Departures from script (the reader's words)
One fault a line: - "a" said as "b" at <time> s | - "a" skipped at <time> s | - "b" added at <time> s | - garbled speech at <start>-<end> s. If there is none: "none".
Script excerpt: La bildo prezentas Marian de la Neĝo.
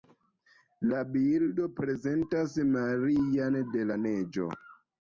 none